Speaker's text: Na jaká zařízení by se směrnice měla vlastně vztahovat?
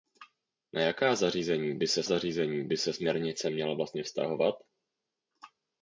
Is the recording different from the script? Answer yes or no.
yes